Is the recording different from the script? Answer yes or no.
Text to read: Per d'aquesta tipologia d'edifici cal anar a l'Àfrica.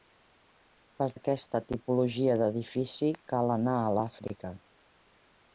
no